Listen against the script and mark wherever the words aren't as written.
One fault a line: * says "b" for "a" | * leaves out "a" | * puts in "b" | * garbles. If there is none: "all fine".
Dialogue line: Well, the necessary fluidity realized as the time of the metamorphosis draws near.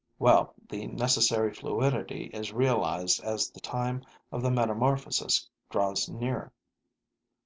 * puts in "is"